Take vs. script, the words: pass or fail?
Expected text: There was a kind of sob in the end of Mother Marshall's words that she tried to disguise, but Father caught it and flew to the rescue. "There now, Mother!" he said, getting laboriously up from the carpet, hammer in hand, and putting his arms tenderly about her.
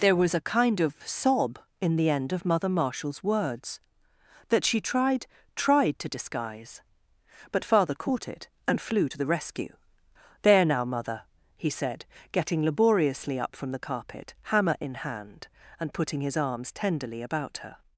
fail